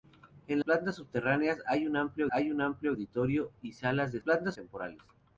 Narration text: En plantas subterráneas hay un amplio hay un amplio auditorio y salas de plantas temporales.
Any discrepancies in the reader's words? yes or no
no